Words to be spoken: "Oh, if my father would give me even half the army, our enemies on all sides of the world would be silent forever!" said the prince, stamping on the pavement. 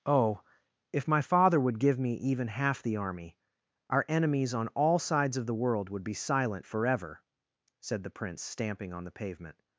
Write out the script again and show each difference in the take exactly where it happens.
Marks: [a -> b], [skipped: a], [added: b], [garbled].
"Oh, if my father would give me even half the army, our enemies on all sides of the world would be silent forever!" said the prince, stamping on the pavement.